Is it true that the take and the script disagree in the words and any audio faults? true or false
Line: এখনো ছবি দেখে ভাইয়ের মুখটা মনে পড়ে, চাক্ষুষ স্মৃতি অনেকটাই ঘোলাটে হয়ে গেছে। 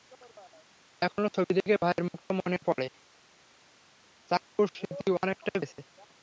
true